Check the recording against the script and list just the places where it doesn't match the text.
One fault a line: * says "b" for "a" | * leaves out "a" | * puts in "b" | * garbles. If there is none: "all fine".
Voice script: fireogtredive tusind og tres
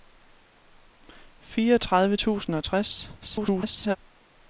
* garbles